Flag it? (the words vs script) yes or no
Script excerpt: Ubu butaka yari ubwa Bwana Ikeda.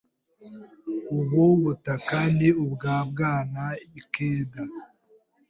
yes